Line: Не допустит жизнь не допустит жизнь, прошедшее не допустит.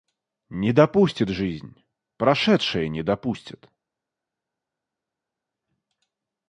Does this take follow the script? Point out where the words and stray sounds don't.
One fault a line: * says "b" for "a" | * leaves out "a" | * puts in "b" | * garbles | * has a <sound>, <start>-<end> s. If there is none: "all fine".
* leaves out "не допустит жизнь"